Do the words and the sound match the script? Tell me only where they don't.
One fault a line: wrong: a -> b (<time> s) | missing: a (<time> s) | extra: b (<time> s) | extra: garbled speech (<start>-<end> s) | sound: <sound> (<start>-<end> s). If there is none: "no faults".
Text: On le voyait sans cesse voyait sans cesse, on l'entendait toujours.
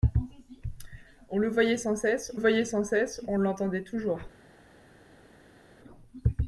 no faults